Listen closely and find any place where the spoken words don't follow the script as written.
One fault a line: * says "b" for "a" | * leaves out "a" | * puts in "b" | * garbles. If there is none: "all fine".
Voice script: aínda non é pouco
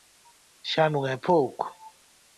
* says "xa" for "aínda"